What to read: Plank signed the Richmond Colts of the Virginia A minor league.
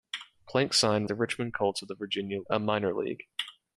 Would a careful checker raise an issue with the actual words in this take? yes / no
no